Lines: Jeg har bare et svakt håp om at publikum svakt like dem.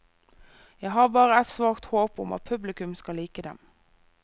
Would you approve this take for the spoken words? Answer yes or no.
no